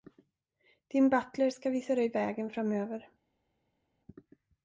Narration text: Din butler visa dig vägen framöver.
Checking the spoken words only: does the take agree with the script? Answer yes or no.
no